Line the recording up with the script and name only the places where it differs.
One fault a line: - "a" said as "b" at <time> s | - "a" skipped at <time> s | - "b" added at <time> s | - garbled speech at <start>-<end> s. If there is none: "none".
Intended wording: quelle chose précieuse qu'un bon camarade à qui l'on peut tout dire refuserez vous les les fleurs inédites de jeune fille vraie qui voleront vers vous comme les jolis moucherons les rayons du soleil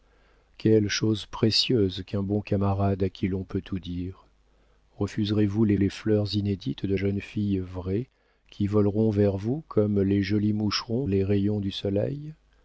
none